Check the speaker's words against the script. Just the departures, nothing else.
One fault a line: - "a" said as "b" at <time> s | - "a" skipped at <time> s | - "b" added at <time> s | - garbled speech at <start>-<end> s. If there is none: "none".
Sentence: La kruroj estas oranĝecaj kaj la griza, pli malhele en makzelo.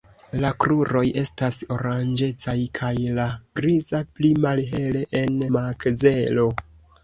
none